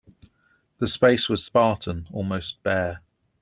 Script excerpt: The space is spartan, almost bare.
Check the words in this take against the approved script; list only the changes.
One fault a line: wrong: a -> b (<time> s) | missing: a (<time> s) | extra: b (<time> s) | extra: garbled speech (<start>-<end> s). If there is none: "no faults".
wrong: is -> was (1.3 s)